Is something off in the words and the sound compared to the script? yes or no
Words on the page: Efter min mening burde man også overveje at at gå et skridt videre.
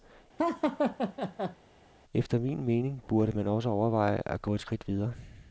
yes